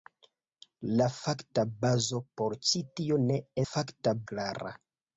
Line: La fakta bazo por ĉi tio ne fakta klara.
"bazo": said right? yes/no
yes